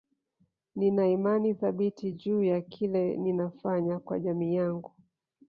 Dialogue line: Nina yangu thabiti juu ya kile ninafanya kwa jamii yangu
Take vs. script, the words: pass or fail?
fail